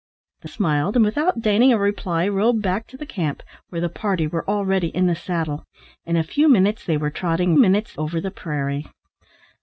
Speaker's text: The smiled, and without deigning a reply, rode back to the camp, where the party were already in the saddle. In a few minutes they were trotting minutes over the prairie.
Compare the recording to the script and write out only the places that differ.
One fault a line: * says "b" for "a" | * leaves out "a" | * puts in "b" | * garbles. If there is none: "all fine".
all fine